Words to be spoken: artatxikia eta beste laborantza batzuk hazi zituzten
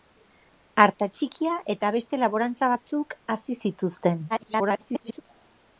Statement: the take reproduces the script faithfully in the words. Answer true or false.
false